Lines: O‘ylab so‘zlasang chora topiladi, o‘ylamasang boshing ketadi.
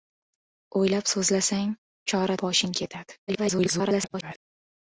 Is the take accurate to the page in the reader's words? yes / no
no